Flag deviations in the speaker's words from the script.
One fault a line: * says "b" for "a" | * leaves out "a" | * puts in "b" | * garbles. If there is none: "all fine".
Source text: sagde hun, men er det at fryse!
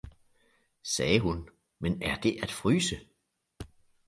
all fine